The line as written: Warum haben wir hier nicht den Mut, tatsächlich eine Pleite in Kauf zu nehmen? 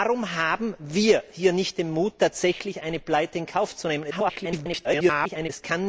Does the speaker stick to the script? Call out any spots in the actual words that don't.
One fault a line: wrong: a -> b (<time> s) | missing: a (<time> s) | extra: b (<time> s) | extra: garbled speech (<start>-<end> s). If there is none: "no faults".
extra: garbled speech (4.1-5.5 s)